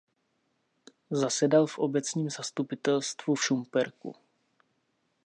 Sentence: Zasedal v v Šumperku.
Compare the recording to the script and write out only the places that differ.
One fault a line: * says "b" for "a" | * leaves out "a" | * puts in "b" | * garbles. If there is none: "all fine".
* puts in "obecním zastupitelstvu"